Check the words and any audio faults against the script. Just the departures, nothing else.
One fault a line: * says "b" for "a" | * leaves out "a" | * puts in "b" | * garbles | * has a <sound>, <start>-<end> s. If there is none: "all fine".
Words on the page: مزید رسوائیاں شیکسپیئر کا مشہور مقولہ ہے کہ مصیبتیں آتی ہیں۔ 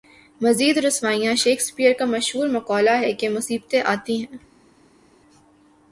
all fine